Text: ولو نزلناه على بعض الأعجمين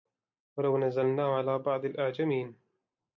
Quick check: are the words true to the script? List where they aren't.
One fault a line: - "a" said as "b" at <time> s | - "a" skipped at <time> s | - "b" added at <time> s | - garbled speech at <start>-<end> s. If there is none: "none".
none